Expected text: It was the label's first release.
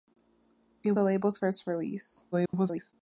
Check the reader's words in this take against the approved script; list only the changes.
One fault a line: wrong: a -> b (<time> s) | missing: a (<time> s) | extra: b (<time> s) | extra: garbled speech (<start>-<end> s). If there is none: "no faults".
missing: was (0.9 s)
extra: garbled speech (2.3-2.9 s)